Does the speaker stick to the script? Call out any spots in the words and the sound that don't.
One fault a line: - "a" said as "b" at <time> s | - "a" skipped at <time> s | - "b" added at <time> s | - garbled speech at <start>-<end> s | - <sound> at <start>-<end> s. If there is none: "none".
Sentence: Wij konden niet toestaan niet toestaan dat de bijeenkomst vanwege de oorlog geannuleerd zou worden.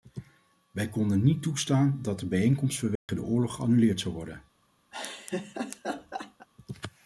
- "niet toestaan" skipped at 2.0 s
- dropout at 3.0-3.1 s
- laugh at 4.9-6.5 s